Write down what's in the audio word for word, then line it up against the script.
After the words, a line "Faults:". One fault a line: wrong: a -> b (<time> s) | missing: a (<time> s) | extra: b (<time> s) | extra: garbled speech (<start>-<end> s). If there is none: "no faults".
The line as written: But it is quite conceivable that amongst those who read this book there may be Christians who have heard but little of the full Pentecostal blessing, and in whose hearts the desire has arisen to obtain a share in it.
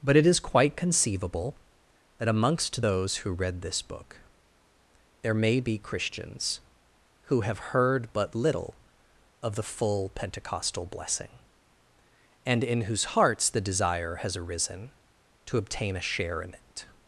But it is quite conceivable that amongst those who read this book there may be Christians who have heard but little of the full Pentecostal blessing, and in whose hearts the desire has arisen to obtain a share in it.
Faults:
no faults